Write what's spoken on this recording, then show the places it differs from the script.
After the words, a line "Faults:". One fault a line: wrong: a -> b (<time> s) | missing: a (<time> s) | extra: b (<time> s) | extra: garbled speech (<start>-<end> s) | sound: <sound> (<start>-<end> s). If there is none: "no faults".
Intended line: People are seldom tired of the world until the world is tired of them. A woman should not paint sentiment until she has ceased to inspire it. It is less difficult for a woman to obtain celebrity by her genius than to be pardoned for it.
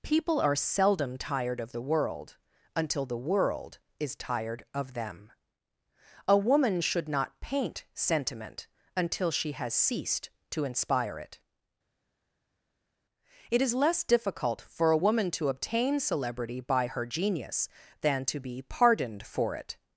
People are seldom tired of the world until the world is tired of them. A woman should not paint sentiment until she has ceased to inspire it. It is less difficult for a woman to obtain celebrity by her genius than to be pardoned for it.
Faults:
no faults